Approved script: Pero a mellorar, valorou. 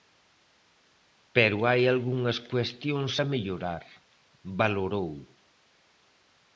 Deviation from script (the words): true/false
true